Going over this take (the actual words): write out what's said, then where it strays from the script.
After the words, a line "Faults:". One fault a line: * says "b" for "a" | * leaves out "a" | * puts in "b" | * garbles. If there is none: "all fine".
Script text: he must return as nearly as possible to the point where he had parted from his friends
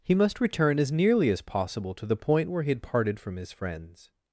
he must return as nearly as possible to the point where he had parted from his friends
Faults:
all fine